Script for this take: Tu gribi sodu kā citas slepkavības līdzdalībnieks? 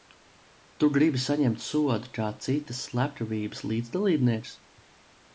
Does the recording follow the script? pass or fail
fail